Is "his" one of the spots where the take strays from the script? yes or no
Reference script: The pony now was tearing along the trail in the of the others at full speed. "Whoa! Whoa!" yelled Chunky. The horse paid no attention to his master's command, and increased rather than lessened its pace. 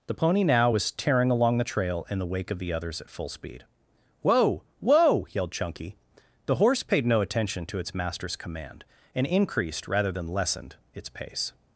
yes